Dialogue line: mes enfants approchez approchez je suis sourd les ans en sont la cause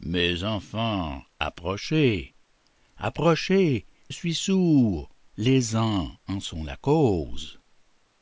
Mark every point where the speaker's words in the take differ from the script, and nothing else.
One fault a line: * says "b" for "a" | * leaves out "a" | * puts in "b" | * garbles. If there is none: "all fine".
* leaves out "je"